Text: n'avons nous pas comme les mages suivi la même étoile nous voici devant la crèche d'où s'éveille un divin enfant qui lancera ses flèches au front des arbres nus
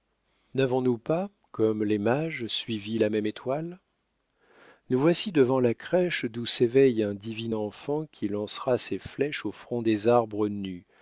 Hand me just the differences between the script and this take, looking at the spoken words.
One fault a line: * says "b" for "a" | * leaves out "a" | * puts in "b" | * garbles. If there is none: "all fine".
all fine